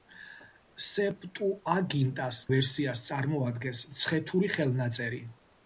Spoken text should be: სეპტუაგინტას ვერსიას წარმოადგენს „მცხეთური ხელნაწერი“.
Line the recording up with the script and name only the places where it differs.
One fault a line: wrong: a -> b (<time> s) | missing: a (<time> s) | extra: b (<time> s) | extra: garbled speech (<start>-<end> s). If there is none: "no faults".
no faults